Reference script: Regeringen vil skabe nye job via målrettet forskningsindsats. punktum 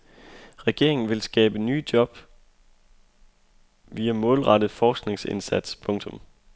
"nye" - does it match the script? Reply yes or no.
yes